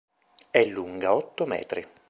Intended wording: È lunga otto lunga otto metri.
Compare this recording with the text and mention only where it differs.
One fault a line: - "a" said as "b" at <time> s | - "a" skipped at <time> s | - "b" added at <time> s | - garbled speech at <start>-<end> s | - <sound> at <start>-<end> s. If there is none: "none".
- "lunga otto" skipped at 1.4 s